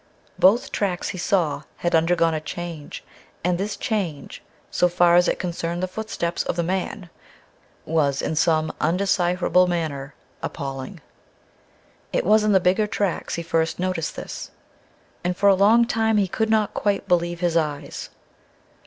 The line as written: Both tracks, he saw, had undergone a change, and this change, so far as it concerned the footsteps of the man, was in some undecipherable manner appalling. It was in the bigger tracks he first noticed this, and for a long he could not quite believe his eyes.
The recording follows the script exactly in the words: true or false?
false